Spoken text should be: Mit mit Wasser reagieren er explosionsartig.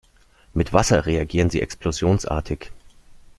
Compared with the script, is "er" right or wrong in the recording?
wrong